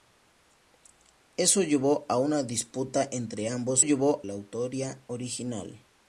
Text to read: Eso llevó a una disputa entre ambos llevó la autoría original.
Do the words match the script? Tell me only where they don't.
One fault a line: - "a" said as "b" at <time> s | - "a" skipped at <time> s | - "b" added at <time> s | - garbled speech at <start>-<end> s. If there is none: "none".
none